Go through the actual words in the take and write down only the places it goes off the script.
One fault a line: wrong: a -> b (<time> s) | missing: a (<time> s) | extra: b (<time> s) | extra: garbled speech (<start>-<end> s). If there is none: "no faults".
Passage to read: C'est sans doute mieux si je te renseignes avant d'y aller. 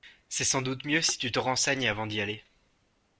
wrong: je -> tu (1.2 s)